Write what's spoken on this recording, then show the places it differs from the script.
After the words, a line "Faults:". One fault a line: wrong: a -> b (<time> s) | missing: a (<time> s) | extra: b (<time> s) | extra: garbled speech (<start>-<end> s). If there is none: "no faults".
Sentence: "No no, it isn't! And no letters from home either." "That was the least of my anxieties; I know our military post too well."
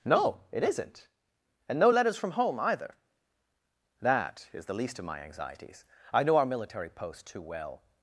"No, it isn't! And no letters from home either." "That is the least of my anxieties; I know our military post too well."
Faults:
missing: no (0.4 s)
wrong: was -> is (4.5 s)